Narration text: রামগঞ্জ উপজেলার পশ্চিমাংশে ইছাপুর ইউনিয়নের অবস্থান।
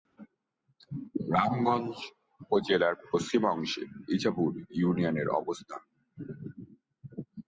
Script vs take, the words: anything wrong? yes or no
no